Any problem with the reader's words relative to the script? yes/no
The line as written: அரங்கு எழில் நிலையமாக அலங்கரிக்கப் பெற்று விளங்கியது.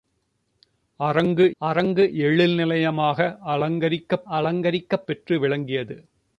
yes